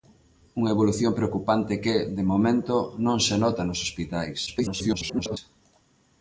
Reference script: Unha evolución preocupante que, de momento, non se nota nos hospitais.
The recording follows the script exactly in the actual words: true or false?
false